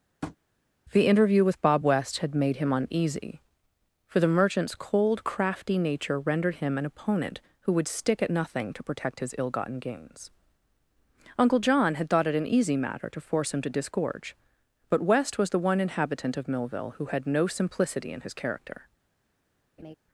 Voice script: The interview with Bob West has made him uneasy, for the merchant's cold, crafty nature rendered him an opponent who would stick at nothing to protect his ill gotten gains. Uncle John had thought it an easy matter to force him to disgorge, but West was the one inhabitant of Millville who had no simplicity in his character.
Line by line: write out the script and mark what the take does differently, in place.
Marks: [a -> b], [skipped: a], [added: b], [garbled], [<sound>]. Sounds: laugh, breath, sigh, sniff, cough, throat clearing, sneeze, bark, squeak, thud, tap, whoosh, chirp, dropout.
[tap] The interview with Bob West [has -> had] made him uneasy, for the merchant's cold, crafty nature rendered him an opponent who would stick at nothing to protect his ill gotten gains. Uncle John had thought it an easy matter to force him to disgorge, but West was the one inhabitant of Millville who had no simplicity in his character. [laugh]